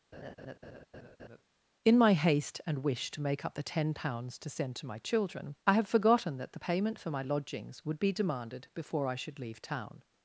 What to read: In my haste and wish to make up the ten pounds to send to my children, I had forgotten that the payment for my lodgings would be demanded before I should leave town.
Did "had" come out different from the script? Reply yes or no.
yes